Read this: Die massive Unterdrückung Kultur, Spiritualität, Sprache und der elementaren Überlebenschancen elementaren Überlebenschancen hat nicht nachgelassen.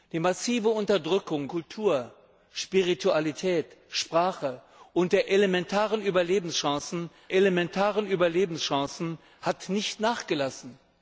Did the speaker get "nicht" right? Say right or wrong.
right